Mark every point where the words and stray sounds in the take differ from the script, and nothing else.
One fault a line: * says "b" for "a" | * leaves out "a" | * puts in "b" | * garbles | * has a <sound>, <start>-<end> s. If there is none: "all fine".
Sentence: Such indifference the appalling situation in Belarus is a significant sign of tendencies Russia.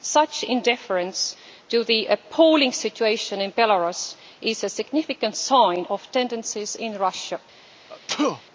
* puts in "to"
* puts in "in"
* has a sneeze, 7.9-8.4 s